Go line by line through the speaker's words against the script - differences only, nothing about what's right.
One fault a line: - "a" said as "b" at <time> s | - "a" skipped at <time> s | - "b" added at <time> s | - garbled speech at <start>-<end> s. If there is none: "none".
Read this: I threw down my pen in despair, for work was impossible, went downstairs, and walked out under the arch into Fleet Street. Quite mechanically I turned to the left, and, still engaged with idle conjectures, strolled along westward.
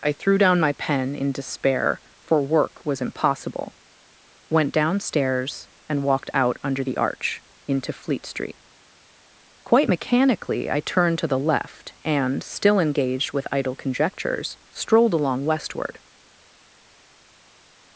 none